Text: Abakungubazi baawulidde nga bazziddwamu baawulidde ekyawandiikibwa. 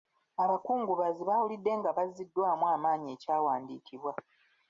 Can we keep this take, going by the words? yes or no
no